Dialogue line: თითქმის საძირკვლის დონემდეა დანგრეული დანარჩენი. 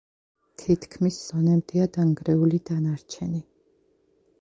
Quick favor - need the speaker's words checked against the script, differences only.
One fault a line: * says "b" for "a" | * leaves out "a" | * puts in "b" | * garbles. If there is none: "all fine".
* leaves out "საძირკვლის"